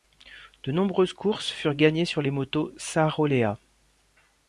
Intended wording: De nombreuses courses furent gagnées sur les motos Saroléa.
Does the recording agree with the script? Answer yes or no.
yes